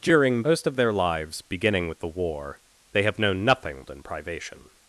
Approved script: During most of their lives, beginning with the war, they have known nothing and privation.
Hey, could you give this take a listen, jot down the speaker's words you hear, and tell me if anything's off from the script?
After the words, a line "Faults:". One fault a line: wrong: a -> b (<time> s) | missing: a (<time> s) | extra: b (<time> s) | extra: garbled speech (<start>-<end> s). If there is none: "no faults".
During most of their lives, beginning with the war, they have known nothing and privation.
Faults:
no faults